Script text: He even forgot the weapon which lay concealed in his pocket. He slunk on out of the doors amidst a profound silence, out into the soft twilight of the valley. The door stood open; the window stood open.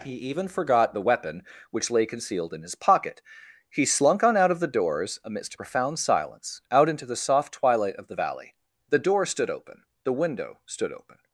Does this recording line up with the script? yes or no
yes